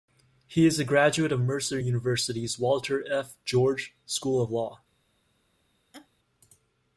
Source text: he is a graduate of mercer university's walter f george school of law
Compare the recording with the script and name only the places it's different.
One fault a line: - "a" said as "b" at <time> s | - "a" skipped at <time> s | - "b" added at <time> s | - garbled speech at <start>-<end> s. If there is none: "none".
none